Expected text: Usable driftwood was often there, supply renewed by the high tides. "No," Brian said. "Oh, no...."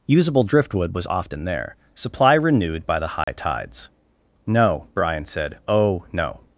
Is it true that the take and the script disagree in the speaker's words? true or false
false